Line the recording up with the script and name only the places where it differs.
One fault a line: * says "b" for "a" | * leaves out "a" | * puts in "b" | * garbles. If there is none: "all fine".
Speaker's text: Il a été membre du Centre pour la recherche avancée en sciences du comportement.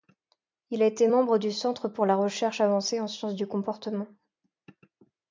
all fine